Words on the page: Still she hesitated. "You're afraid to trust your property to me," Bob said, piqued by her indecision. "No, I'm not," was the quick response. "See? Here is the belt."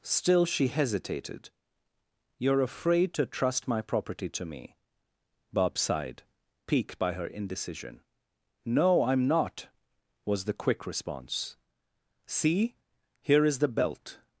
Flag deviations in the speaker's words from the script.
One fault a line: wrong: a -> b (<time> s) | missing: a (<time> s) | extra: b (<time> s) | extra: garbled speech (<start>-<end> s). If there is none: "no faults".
wrong: your -> my (3.7 s)
wrong: said -> sighed (5.8 s)